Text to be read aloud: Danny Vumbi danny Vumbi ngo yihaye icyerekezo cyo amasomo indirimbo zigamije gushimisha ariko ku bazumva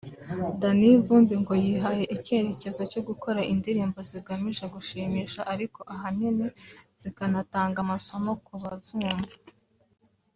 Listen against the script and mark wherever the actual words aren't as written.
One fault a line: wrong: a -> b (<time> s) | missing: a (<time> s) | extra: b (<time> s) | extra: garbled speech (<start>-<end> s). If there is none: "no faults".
missing: danny Vumbi (1.4 s)
wrong: amasomo -> gukora (3.1 s)
extra: ahanini zikanatanga amasomo (5.9 s)